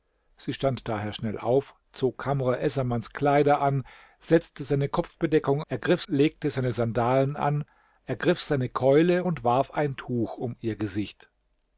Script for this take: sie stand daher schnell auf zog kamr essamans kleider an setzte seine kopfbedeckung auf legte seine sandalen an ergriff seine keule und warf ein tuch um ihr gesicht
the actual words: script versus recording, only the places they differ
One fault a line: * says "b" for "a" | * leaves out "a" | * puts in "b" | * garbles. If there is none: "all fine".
* says "ergriff" for "auf"